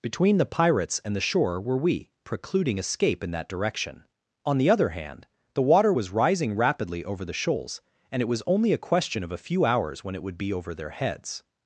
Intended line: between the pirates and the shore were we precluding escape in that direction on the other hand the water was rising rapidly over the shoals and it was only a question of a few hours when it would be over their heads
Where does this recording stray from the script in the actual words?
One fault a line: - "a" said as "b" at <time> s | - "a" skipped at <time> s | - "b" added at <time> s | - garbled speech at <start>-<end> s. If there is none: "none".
none